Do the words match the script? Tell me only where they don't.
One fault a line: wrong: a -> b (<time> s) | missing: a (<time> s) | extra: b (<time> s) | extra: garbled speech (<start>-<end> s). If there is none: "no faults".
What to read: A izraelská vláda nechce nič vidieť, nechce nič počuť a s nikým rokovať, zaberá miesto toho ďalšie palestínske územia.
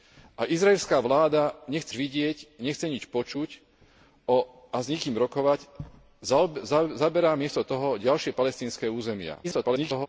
missing: nič (1.9 s)
extra: garbled speech (9.4-10.1 s)